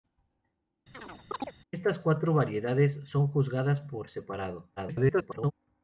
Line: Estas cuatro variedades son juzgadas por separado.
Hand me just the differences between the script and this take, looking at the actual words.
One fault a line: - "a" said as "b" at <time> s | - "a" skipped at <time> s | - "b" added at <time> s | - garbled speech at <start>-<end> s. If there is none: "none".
- garbled speech at 4.8-5.5 s